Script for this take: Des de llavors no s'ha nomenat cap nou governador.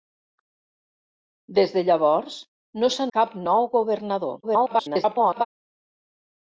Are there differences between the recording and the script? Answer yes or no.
yes